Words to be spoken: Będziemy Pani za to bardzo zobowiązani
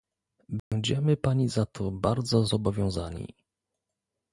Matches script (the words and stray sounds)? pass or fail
fail